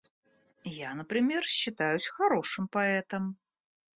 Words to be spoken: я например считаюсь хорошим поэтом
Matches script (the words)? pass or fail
pass